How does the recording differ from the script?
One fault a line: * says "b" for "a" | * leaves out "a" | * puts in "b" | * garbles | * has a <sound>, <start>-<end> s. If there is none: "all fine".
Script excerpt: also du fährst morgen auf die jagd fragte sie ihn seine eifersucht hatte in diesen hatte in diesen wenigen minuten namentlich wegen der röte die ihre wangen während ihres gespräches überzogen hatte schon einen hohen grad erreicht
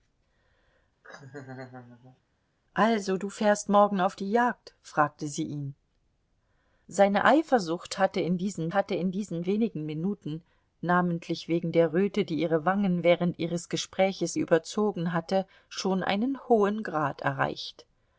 * has a laugh, 1.0-2.2 s